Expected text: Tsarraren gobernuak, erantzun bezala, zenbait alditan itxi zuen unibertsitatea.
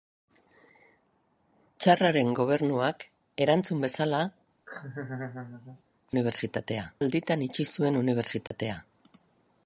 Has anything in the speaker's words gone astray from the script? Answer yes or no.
yes